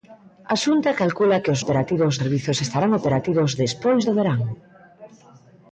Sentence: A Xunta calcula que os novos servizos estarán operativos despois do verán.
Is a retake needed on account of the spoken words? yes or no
yes